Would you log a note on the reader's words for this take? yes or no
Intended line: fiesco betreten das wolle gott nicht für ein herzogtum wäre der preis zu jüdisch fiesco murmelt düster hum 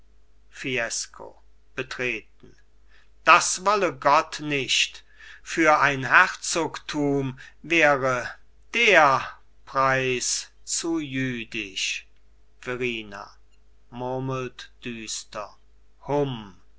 yes